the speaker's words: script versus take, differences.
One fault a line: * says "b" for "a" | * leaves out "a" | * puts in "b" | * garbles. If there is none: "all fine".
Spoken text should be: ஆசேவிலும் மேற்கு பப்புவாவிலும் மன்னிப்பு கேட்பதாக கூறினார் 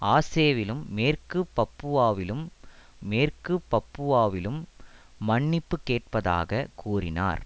* puts in "மேற்கு பப்புவாவிலும்"